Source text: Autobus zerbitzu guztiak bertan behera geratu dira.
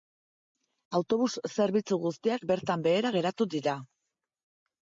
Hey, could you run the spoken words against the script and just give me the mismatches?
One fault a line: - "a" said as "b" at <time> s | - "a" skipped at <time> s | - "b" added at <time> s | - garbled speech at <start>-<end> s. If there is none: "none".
none